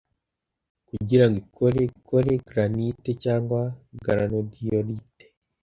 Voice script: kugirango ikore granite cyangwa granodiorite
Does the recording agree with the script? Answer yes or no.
no